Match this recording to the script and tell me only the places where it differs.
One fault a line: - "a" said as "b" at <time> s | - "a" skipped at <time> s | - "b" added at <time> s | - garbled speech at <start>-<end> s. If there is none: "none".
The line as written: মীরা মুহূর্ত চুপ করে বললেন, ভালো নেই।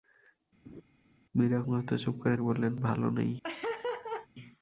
none